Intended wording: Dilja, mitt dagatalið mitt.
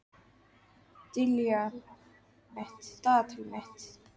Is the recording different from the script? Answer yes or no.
no